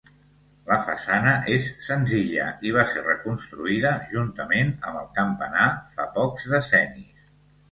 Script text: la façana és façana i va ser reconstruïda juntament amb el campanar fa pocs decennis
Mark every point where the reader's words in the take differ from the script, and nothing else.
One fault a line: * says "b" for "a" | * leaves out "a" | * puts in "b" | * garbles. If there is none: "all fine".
* says "senzilla" for "façana"